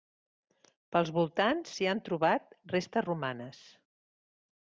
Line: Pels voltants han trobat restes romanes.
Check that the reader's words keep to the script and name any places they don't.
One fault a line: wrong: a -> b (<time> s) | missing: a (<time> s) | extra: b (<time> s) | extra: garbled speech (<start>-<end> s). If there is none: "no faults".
extra: s'hi (1.7 s)